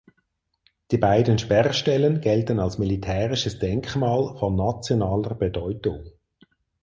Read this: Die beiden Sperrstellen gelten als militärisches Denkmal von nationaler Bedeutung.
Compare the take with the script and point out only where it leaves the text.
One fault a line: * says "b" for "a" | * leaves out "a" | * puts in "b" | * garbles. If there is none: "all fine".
all fine